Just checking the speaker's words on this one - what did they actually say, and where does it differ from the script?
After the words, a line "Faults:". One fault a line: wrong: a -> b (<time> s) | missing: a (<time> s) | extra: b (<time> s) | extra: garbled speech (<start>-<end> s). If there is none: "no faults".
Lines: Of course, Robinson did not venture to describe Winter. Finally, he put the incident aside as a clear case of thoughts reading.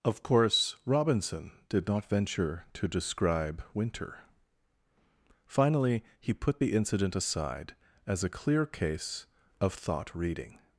Of course, Robinson did not venture to describe Winter. Finally, he put the incident aside as a clear case of thought reading.
Faults:
wrong: thoughts -> thought (9.7 s)